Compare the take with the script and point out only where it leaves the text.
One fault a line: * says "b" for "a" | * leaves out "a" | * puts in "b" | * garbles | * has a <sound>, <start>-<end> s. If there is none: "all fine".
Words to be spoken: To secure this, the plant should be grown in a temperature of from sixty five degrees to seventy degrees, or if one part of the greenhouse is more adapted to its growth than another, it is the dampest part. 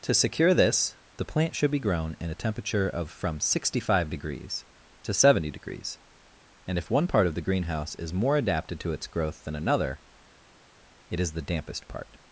* says "and" for "or"